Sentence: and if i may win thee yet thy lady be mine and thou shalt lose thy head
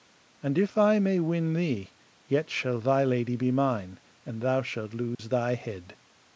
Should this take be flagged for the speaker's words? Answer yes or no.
yes